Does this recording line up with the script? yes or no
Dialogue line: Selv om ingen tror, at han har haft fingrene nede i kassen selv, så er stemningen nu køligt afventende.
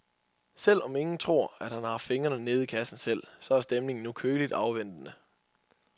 yes